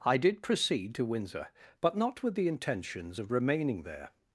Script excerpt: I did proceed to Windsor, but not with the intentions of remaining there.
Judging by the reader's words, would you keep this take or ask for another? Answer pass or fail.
pass